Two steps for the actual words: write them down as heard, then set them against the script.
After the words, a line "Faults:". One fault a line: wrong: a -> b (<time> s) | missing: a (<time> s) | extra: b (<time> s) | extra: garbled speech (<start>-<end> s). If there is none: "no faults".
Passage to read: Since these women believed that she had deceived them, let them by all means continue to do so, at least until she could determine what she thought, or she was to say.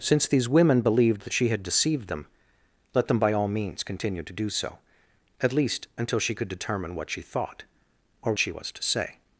Since these women believed that she had deceived them, let them by all means continue to do so, at least until she could determine what she thought, or she was to say.
Faults:
no faults